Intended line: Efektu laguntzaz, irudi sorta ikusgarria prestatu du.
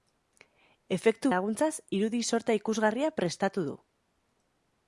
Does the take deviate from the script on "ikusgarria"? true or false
false